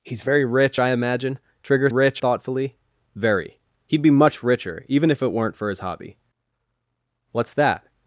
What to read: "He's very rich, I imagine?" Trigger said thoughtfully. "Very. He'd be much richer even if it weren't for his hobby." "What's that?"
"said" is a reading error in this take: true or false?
true